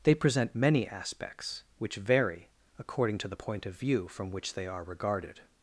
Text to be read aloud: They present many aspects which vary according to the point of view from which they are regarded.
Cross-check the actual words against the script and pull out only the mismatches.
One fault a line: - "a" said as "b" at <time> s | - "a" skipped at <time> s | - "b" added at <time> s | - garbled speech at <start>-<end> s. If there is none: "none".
none